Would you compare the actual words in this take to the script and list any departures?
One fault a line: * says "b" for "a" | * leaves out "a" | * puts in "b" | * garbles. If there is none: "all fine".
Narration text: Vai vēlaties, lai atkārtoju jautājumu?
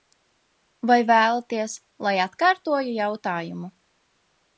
all fine